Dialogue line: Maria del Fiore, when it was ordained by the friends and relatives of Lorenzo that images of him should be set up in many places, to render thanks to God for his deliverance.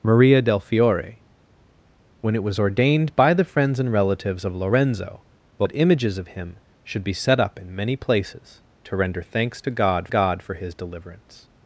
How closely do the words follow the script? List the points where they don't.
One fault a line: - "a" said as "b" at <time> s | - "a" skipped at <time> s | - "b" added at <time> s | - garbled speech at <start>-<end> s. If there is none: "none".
- "God" added at 10.1 s